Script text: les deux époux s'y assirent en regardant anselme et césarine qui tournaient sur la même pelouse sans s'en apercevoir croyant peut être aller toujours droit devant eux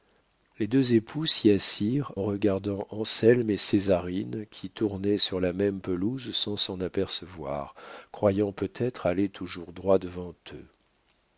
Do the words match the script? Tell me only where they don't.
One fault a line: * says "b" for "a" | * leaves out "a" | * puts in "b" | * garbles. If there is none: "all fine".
* leaves out "en"